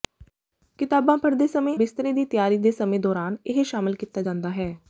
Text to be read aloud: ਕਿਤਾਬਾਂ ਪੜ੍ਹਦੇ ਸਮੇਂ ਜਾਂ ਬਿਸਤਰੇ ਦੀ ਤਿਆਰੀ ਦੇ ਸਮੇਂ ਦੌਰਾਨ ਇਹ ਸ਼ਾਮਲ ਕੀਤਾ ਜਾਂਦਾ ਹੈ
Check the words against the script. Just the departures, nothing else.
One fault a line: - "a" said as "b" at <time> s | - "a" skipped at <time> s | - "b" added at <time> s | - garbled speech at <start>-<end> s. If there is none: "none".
- "ਜਾਂ" skipped at 1.8 s